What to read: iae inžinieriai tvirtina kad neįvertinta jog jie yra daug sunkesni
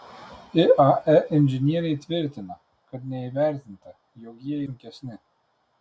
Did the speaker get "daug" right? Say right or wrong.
wrong